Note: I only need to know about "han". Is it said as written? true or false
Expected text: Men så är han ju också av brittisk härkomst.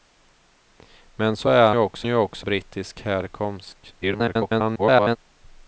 false